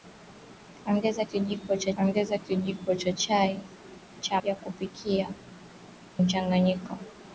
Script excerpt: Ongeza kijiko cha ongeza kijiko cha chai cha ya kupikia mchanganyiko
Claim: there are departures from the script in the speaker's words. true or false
false